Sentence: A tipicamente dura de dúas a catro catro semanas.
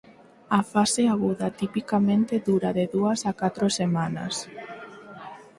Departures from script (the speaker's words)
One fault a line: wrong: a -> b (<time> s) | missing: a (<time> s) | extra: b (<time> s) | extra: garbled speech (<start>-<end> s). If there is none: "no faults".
extra: fase aguda (0.7 s)
missing: catro (3.7 s)